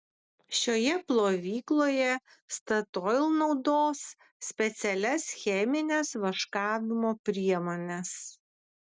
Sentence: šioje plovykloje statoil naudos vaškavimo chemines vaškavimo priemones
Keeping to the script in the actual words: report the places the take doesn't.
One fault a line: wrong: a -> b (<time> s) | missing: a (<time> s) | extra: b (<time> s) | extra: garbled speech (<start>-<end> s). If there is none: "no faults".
wrong: vaškavimo -> specialias (4.5 s)